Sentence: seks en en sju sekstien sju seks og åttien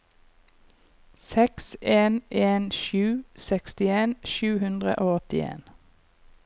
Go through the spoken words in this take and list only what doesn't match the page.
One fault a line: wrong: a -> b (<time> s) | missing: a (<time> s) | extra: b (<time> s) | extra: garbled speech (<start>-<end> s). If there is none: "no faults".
wrong: seks -> hundre (4.6 s)